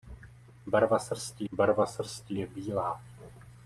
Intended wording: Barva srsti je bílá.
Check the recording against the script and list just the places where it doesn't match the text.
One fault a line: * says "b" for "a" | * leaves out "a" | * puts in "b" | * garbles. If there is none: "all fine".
* puts in "barva srsti"